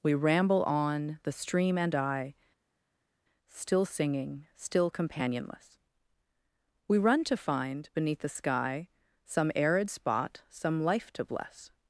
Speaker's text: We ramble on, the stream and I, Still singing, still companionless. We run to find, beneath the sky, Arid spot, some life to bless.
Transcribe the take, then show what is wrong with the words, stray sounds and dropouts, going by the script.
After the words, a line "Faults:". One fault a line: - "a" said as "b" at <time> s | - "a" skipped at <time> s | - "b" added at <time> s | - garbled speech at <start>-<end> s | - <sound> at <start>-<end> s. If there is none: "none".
We ramble on, the stream and I, Still singing, still companionless. We run to find, beneath the sky, Some arid spot, some life to bless.
Faults:
- "Some" added at 9.2 s